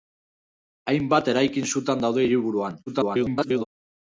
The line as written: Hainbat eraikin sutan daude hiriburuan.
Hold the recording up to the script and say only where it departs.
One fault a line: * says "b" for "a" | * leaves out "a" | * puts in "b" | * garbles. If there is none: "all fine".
* garbles